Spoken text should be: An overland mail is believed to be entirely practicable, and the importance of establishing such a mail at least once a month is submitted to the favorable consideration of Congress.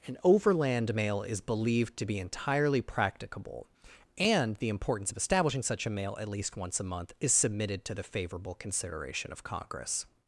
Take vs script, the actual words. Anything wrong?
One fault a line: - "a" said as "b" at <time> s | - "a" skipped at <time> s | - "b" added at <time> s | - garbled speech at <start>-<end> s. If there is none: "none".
none